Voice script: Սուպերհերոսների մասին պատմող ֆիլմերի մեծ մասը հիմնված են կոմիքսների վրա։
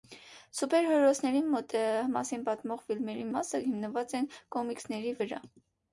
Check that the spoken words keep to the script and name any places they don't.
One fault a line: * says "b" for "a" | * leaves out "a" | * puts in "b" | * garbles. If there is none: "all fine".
* leaves out "մեծ"